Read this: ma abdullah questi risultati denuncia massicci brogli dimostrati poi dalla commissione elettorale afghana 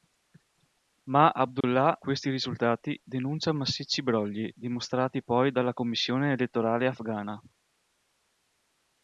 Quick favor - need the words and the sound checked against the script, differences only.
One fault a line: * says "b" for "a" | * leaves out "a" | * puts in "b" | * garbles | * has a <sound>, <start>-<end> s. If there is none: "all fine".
* has a dropout, 1.6-1.6 s